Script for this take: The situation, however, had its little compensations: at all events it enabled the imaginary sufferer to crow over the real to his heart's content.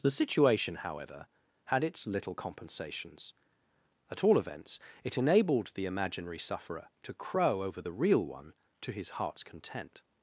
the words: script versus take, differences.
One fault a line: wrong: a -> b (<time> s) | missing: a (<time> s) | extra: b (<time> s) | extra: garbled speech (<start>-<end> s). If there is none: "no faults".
extra: one (8.2 s)